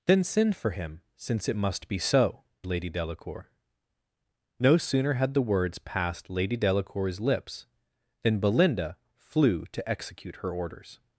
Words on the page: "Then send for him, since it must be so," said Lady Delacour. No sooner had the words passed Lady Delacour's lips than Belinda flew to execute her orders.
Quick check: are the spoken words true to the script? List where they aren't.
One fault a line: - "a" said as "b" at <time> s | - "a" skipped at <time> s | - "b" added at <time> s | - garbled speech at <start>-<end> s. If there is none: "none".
- "said" skipped at 2.4 s